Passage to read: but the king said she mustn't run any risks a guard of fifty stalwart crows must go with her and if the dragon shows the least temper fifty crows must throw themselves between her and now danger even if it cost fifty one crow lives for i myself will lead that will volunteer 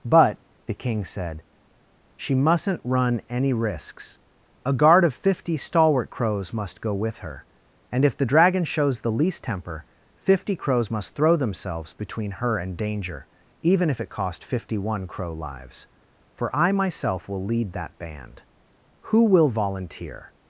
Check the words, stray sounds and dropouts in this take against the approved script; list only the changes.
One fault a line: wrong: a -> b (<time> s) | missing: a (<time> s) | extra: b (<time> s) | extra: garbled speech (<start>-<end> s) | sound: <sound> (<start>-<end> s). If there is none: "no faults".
missing: now (12.8 s)
extra: band who (18.0 s)